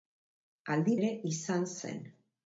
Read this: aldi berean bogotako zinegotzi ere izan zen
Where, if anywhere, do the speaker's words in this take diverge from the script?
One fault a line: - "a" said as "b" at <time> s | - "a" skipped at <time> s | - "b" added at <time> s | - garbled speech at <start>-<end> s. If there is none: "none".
- "berean bogotako zinegotzi" skipped at 0.9 s